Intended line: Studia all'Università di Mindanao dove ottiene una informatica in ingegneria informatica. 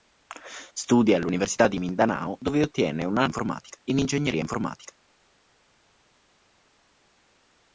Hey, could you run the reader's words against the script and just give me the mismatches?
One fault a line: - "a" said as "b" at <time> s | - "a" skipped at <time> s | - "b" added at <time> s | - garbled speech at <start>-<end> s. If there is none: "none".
none